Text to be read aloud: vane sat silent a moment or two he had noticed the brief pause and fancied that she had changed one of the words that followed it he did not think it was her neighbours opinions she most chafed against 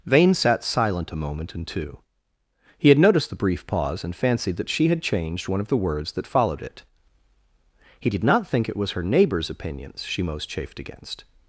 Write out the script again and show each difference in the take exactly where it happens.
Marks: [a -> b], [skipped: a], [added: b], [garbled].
vane sat silent a moment [or -> and] two he had noticed the brief pause and fancied that she had changed one of the words that followed it he did not think it was her neighbours opinions she most chafed against